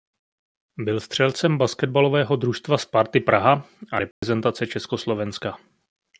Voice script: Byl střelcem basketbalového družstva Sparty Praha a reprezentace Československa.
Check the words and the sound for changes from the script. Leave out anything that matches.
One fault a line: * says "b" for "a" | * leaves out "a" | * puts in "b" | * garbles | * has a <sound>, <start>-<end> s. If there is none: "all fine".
* has a dropout, 4.1-4.2 s